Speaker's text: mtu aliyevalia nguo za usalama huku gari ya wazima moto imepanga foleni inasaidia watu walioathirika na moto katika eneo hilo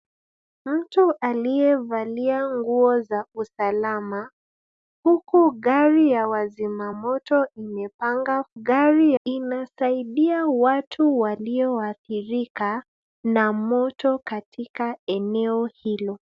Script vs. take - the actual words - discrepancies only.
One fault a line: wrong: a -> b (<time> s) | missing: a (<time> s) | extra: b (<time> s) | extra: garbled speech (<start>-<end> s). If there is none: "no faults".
wrong: foleni -> gari (8.5 s)